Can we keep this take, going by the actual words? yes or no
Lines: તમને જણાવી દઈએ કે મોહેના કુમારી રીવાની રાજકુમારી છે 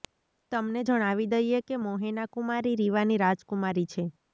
yes